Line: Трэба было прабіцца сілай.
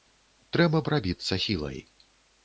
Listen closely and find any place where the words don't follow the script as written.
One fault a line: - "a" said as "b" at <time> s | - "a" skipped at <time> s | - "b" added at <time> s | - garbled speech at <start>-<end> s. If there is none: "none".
- "было" skipped at 0.8 s